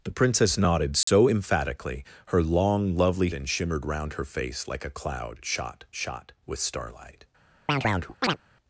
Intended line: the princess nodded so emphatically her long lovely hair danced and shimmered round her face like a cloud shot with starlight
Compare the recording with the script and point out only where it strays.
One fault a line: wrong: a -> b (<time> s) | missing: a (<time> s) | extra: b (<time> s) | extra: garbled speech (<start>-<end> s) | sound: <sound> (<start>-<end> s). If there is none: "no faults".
sound: dropout (1.0-1.1 s)
missing: hair danced (3.3 s)
extra: shot (5.9 s)
sound: chirp (7.7-8.4 s)